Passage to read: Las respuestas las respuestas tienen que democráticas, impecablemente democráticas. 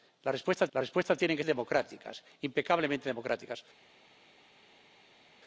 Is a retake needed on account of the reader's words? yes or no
no